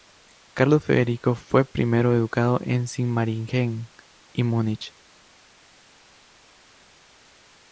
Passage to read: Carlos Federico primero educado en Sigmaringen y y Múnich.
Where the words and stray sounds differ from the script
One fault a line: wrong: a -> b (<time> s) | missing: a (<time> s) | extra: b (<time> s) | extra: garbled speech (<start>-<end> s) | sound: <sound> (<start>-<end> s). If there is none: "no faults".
extra: fue (1.3 s)
missing: y (4.4 s)